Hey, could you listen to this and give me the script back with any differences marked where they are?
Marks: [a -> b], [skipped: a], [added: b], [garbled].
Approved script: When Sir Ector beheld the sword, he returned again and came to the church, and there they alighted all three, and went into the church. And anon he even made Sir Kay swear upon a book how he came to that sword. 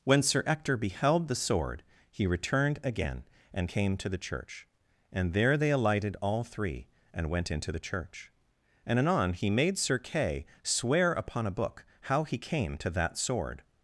When Sir Ector beheld the sword, he returned again and came to the church, and there they alighted all three, and went into the church. And anon he [skipped: even] made Sir Kay swear upon a book how he came to that sword.